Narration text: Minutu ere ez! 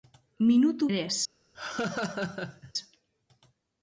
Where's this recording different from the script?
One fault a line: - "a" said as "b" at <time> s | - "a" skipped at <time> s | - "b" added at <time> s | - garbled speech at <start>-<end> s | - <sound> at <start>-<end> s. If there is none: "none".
- laugh at 1.5-2.7 s